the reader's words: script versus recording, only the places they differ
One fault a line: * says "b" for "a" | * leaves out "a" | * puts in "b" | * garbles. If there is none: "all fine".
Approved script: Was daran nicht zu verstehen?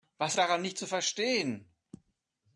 all fine